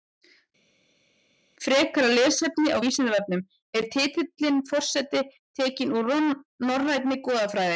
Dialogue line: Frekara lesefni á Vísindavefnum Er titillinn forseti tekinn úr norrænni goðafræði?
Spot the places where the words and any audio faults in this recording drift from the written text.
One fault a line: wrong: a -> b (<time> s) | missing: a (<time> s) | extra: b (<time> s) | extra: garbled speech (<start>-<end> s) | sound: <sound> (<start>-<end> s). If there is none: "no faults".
no faults